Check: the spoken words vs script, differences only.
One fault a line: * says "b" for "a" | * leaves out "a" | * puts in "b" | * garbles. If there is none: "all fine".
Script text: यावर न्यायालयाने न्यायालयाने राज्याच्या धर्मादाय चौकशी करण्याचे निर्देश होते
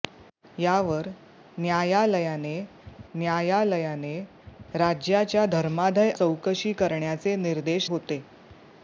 all fine